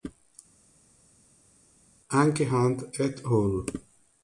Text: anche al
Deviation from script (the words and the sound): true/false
true